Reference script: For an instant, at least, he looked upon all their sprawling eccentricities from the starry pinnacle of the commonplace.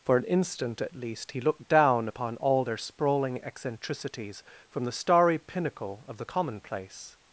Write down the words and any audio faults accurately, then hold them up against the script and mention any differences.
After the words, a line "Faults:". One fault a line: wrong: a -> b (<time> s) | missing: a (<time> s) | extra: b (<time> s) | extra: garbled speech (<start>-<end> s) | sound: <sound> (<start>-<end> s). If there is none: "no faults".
For an instant, at least, he looked down upon all their sprawling eccentricities from the starry pinnacle of the commonplace.
Faults:
extra: down (1.7 s)